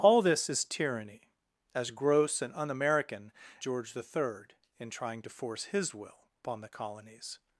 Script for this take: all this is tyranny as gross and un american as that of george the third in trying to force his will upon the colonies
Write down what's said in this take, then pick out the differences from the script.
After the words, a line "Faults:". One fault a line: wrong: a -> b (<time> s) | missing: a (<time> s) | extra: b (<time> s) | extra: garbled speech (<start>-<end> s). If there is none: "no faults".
all this is tyranny as gross and un american george the third in trying to force his will upon the colonies
Faults:
missing: as that of (3.3 s)